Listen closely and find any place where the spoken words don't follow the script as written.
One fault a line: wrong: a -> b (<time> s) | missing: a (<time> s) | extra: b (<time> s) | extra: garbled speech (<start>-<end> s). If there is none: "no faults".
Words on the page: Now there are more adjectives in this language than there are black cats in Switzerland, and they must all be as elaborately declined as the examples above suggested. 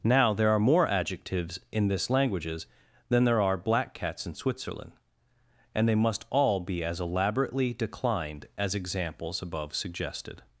wrong: language -> languages (2.1 s)
missing: the (8.7 s)